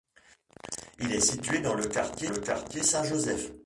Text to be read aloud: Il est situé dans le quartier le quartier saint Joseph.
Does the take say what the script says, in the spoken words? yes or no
yes